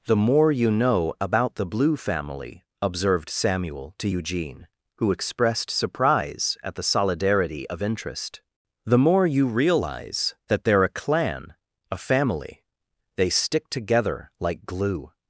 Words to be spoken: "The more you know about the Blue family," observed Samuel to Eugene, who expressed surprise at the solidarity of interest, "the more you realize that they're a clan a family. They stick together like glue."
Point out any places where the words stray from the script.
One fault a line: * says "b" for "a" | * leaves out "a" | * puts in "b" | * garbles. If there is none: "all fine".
all fine